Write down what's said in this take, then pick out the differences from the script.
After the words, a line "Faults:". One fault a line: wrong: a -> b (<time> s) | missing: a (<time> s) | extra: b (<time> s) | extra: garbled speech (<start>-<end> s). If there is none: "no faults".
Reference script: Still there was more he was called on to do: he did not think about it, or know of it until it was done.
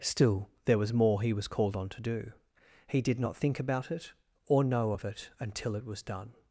Still there was more he was called on to do: he did not think about it, or know of it until it was done.
Faults:
no faults